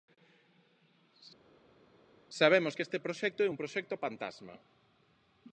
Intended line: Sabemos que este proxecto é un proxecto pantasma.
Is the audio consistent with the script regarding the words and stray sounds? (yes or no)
yes